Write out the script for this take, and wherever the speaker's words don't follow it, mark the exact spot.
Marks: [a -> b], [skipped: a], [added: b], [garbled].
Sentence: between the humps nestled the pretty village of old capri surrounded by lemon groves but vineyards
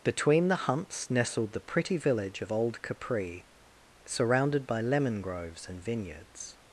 between the humps nestled the pretty village of old capri surrounded by lemon groves [but -> and] vineyards